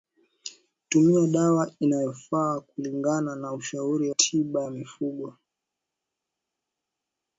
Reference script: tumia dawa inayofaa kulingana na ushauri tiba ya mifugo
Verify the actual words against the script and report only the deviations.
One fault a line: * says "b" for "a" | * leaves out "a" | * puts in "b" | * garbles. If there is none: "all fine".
all fine